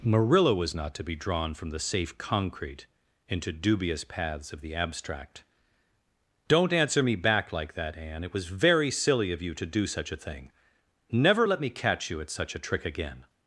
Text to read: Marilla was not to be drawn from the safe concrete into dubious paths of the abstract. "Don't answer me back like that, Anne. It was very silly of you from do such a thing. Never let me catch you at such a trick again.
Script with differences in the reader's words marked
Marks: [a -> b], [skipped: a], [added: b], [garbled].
Marilla was not to be drawn from the safe concrete into dubious paths of the abstract. "Don't answer me back like that, Anne. It was very silly of you [from -> to] do such a thing. Never let me catch you at such a trick again.